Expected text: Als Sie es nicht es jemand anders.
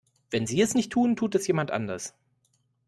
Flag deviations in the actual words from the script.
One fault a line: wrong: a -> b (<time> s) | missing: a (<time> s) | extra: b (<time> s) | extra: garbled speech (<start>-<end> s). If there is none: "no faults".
wrong: Als -> Wenn (0.3 s)
extra: tun tut (0.9 s)